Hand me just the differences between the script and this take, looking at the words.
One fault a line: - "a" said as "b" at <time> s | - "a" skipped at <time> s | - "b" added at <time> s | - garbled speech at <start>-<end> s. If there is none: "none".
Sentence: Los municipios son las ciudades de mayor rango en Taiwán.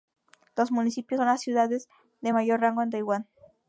none